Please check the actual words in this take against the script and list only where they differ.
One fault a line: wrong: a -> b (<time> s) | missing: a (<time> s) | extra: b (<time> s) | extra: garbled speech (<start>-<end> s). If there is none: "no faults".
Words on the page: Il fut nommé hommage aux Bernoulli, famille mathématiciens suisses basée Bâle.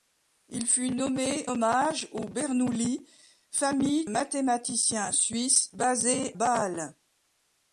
no faults